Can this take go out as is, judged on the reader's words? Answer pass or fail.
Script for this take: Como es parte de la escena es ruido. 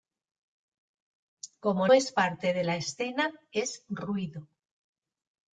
pass